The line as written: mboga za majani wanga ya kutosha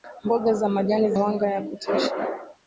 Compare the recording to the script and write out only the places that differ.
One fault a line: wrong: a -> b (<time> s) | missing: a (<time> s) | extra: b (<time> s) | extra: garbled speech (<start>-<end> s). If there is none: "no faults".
no faults